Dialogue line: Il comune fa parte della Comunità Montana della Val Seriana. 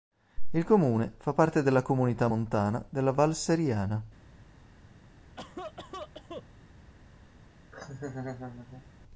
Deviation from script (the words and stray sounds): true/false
true